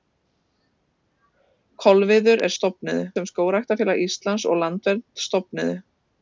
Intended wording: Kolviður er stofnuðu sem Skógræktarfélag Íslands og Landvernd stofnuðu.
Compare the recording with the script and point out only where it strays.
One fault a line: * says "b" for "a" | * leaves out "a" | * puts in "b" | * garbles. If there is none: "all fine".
all fine